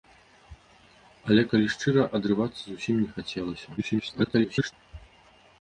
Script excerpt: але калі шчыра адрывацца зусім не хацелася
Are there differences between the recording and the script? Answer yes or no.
yes